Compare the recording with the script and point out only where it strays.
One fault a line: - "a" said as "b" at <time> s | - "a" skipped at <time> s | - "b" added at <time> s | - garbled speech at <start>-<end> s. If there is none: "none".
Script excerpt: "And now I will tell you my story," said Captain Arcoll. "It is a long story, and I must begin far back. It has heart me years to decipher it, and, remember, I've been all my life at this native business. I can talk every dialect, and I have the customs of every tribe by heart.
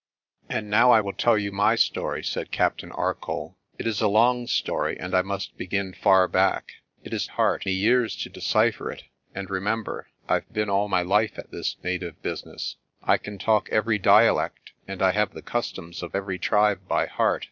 none